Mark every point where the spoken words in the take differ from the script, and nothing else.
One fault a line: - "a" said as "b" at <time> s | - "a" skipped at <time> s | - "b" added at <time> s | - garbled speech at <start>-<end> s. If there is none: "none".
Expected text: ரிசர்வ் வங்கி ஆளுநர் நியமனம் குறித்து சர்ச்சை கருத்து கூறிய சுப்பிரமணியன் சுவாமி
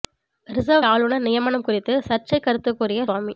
- "வங்கி" skipped at 0.8 s
- "சுப்பிரமணியன்" skipped at 3.1 s